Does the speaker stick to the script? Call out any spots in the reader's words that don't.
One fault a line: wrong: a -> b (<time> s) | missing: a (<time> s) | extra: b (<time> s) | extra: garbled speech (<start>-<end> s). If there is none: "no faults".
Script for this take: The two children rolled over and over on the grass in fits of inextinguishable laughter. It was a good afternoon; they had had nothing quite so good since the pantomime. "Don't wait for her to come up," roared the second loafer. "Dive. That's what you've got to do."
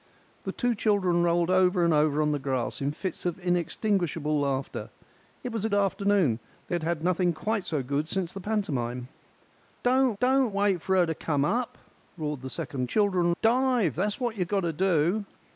missing: good (5.7 s)
extra: don't (10.2 s)
wrong: loafer -> children (12.8 s)